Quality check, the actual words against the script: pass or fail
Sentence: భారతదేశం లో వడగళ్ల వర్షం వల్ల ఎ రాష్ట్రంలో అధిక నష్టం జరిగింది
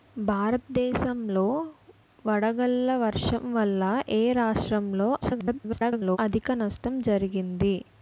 fail